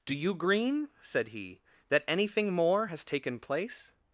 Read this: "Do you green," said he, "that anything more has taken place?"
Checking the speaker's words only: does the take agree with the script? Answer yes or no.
yes